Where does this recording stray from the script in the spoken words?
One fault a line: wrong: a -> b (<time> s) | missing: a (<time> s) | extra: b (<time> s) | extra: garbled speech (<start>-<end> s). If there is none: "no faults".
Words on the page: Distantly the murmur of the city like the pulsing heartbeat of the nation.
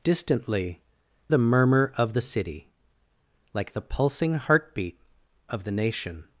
no faults